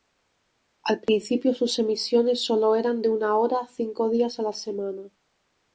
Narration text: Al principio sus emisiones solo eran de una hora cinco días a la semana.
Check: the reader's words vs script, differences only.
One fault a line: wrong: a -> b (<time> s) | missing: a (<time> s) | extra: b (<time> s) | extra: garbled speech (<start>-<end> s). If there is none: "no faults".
no faults